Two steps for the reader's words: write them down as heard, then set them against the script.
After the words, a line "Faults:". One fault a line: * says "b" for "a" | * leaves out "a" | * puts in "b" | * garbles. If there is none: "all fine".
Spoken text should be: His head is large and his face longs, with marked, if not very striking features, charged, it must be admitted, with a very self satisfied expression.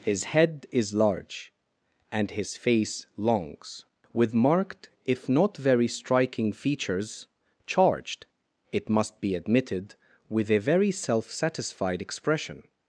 His head is large and his face longs, with marked, if not very striking features, charged, it must be admitted, with a very self satisfied expression.
Faults:
all fine